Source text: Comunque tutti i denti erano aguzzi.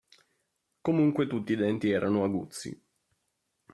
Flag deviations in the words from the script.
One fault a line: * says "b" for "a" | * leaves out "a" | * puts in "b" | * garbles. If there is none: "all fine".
all fine